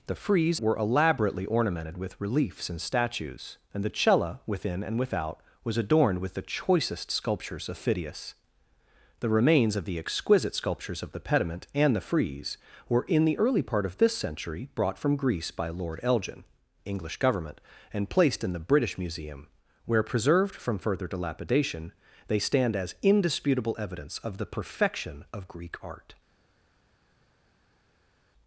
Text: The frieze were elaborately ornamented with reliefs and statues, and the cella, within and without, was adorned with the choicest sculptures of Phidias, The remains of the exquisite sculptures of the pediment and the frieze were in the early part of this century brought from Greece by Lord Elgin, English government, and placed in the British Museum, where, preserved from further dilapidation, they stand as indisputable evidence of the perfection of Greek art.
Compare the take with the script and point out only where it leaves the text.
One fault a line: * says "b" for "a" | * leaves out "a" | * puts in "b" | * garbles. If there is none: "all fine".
all fine